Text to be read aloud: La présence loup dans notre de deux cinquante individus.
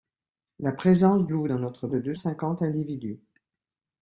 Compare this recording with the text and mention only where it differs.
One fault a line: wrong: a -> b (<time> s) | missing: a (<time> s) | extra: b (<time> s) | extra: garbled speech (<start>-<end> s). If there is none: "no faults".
no faults